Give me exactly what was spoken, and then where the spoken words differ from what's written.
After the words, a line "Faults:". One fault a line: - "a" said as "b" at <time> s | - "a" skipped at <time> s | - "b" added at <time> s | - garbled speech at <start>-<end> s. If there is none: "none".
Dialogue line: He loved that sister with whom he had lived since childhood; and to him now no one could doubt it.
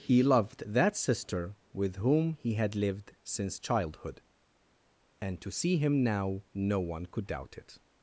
He loved that sister with whom he had lived since childhood; and to see him now no one could doubt it.
Faults:
- "see" added at 5.5 s